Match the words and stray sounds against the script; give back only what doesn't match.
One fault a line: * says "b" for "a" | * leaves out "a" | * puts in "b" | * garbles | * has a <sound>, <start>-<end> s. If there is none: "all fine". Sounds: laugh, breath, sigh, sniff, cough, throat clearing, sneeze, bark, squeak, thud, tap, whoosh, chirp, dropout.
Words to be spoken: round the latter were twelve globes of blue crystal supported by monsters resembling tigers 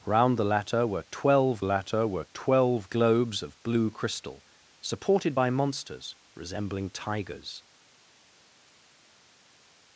* puts in "latter were twelve"